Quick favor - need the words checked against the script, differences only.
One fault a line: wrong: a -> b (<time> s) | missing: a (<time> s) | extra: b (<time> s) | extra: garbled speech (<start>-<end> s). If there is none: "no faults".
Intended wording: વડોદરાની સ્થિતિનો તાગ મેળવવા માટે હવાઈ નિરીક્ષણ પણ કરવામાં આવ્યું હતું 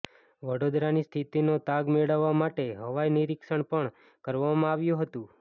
no faults